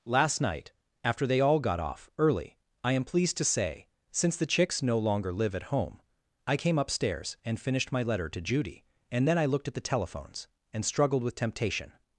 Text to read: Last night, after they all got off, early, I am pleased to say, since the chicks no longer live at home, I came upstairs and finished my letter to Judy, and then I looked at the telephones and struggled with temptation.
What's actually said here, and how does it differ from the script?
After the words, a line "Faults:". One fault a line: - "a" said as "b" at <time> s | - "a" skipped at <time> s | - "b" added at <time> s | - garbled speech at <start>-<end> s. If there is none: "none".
Last night, after they all got off, early, I am pleased to say, since the chicks no longer live at home, I came upstairs and finished my letter to Judy, and then I looked at the telephones and struggled with temptation.
Faults:
none